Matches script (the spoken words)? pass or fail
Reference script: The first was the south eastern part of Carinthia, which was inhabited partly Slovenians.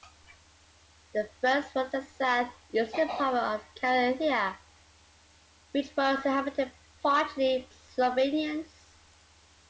pass